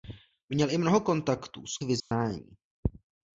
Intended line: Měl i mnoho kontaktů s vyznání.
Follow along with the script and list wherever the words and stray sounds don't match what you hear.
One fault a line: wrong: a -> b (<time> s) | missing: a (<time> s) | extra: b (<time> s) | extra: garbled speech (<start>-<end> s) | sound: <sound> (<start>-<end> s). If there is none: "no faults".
sound: dropout (2.0-2.1 s)